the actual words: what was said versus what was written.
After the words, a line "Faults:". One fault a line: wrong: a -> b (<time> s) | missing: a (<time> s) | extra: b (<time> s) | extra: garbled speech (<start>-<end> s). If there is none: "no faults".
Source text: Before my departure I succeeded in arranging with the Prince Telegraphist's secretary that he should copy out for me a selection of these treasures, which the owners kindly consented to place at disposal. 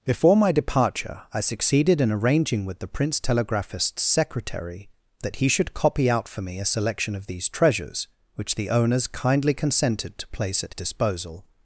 Before my departure I succeeded in arranging with the Prince Telegraphist's secretary that he should copy out for me a selection of these treasures, which the owners kindly consented to place at disposal.
Faults:
no faults